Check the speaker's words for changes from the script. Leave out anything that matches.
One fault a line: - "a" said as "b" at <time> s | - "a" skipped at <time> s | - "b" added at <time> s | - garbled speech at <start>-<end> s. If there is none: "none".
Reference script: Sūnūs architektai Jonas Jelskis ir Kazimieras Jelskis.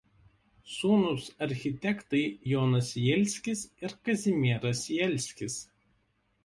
none